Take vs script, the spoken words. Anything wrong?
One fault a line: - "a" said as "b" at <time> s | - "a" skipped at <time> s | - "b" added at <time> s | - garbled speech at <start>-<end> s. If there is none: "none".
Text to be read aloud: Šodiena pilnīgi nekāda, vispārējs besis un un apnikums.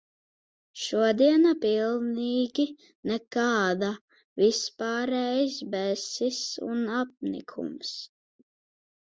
- "un" skipped at 6.8 s